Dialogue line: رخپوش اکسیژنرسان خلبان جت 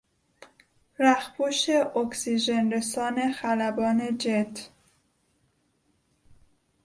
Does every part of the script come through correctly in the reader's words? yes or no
yes